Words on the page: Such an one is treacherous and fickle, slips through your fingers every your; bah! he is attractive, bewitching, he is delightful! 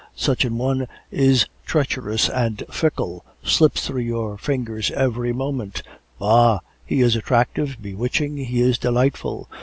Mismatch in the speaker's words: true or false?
true